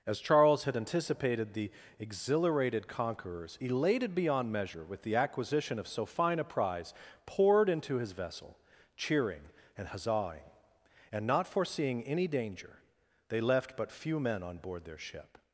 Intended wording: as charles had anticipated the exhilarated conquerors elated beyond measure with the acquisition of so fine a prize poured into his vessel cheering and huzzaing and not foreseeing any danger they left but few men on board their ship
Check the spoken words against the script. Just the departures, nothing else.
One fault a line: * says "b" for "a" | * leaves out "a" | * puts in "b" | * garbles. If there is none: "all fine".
all fine